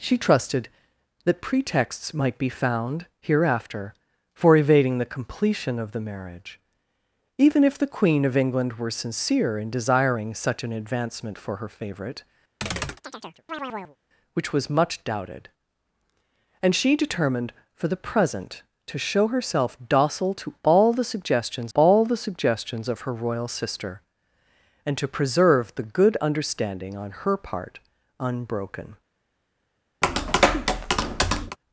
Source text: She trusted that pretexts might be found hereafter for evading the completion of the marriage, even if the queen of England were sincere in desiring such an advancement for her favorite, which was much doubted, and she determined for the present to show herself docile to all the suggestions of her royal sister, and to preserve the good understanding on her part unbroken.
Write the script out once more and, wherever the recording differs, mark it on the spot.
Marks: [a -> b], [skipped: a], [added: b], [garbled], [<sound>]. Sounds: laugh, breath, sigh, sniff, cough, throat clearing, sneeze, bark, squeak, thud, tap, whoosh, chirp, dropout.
She trusted that pretexts might be found hereafter for evading the completion of the marriage, even if the queen of England were sincere in desiring such an advancement for her favorite, [chirp] which was much doubted, and she determined for the present to show herself docile to all the suggestions [added: all the suggestions] of her royal sister, and to preserve the good understanding on her part unbroken. [tap]